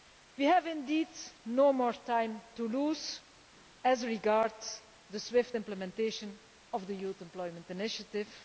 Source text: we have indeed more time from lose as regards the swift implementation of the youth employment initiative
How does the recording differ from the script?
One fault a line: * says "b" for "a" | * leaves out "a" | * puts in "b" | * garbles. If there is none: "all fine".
* puts in "no"
* says "to" for "from"